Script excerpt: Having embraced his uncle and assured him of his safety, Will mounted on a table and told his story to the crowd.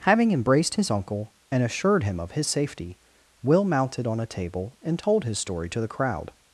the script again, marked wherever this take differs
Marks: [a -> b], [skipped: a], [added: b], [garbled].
Having embraced his uncle and assured him of his safety, Will mounted on a table and told his story to the crowd.